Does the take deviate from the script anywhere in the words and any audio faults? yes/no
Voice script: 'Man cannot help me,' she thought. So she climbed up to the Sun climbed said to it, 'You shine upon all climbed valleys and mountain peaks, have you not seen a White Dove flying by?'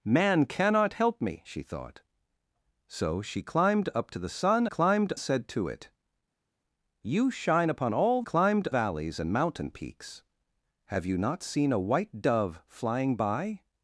no